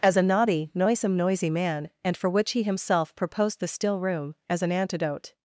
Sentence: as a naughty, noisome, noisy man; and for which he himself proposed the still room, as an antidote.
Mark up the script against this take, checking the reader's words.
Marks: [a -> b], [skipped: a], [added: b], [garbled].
as a naughty, noisome, noisy man; and for which he himself proposed the still room, as an antidote.